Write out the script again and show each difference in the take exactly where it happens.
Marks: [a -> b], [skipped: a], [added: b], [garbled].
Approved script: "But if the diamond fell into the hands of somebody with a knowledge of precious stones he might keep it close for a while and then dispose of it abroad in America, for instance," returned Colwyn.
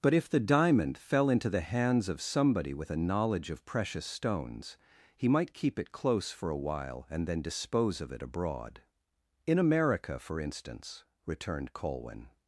"But if the diamond fell into the hands of somebody with a knowledge of precious stones he might keep it close for a while and then dispose of it abroad in America, for instance," returned Colwyn.